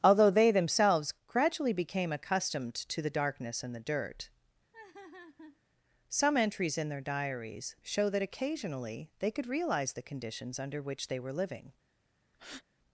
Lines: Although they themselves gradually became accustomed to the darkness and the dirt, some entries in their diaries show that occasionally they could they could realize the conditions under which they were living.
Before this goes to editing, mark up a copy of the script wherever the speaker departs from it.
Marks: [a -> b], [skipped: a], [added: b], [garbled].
Although they themselves gradually became accustomed to the darkness and the dirt, some entries in their diaries show that occasionally they could [skipped: they could] realize the conditions under which they were living.